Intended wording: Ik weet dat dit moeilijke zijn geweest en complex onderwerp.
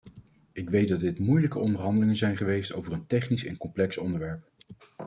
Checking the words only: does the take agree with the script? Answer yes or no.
no